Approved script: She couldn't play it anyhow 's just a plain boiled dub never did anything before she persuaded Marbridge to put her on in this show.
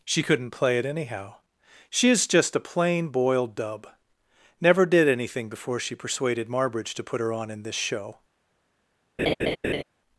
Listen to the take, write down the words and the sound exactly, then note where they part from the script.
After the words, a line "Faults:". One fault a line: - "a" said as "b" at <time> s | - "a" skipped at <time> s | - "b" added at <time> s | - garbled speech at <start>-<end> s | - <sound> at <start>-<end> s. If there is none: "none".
She couldn't play it anyhow 'she is just a plain boiled dub never did anything before she persuaded Marbridge to put her on in this show.
Faults:
- "s" said as "she is" at 1.9 s
- laugh at 9.2-9.8 s